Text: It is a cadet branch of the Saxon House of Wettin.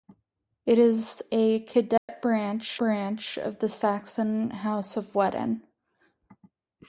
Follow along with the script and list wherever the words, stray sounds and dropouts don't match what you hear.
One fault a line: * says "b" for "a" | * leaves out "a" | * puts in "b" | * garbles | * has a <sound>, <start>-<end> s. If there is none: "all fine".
* has a dropout, 2.0-2.1 s
* puts in "branch"